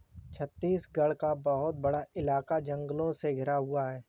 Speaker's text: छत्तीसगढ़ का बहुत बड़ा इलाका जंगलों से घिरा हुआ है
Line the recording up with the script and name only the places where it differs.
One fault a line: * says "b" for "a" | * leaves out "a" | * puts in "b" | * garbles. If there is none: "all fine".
all fine